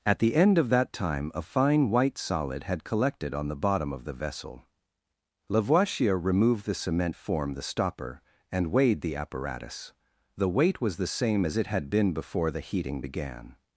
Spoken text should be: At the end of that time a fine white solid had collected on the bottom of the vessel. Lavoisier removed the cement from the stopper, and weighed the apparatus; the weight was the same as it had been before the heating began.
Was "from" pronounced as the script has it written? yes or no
no